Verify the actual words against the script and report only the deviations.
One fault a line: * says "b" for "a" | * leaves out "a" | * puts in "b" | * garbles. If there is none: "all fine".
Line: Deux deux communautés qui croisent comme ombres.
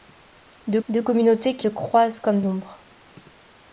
all fine